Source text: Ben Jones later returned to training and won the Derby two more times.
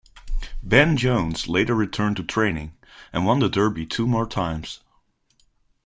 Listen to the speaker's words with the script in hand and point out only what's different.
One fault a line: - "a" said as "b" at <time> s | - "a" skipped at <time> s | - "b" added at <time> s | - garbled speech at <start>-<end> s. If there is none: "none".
none